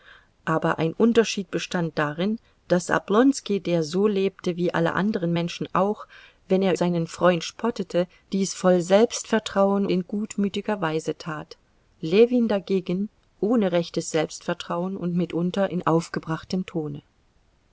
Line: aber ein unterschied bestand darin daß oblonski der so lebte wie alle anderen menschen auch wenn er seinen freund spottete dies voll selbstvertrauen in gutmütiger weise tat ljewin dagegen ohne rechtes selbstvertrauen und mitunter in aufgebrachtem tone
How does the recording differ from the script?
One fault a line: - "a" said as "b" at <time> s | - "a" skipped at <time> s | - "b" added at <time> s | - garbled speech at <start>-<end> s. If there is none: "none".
none